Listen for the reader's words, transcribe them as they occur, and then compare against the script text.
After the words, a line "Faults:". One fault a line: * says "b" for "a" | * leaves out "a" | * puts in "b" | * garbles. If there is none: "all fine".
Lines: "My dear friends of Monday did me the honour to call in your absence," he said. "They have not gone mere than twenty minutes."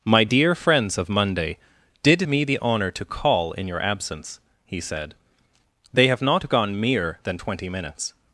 "My dear friends of Monday did me the honour to call in your absence," he said. "They have not gone mere than twenty minutes."
Faults:
all fine